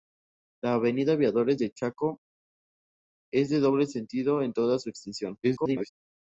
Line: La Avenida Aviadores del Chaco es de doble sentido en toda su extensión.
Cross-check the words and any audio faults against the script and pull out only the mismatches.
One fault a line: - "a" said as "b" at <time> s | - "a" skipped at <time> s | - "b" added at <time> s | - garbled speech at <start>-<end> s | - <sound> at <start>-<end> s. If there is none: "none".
- garbled speech at 5.4-5.9 s